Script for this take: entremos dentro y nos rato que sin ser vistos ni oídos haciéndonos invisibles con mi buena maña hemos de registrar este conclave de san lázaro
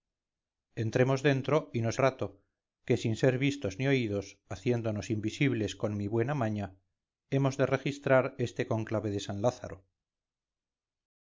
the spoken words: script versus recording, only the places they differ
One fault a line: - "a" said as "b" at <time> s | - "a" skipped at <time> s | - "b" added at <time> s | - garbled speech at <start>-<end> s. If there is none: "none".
none